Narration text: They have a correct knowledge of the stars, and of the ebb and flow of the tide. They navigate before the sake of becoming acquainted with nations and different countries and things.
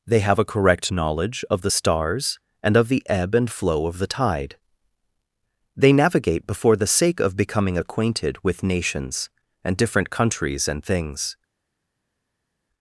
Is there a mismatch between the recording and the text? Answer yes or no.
no